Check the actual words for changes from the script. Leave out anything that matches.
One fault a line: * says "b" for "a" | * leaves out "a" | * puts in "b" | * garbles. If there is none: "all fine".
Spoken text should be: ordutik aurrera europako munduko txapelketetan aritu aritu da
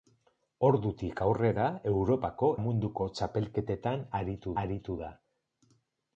all fine